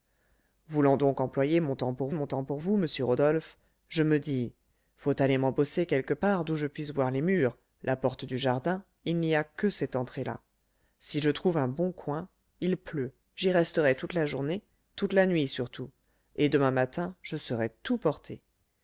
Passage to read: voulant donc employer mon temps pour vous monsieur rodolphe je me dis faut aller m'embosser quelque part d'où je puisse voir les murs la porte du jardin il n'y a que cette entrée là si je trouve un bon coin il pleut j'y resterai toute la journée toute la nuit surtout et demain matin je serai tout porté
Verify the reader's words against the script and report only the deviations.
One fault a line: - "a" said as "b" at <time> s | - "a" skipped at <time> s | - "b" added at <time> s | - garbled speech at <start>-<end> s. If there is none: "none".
- "mon temps pour" added at 2.1 s